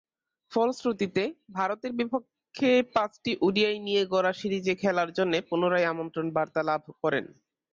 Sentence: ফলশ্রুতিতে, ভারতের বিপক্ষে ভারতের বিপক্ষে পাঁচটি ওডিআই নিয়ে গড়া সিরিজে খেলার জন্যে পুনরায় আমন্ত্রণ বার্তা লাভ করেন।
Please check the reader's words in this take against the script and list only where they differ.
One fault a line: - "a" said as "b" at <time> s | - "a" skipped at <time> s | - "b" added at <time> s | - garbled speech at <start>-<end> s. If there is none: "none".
- "ভারতের বিপক্ষে" skipped at 2.7 s